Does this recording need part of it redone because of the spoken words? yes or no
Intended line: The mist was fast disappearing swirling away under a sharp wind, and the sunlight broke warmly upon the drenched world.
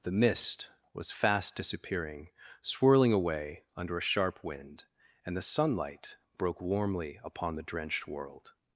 no